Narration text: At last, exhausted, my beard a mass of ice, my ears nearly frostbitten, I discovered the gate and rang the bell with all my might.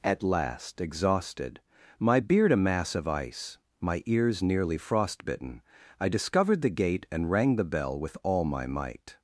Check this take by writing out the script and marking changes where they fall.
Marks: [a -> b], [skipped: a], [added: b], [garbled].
At last, exhausted, my beard a mass of ice, my ears nearly frostbitten, I discovered the gate and rang the bell with all my might.